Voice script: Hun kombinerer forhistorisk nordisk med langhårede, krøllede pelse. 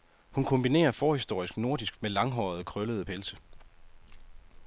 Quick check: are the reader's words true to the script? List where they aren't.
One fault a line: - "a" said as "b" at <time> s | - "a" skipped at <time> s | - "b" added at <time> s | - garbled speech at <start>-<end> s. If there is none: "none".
none